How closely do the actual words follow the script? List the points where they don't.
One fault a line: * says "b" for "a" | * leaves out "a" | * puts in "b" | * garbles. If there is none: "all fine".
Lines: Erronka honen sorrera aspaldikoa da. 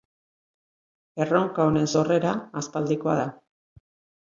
all fine